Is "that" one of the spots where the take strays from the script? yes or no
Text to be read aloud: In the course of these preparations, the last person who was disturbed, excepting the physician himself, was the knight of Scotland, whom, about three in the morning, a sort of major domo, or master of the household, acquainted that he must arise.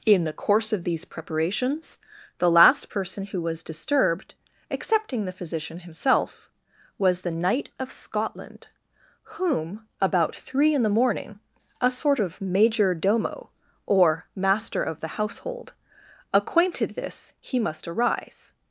yes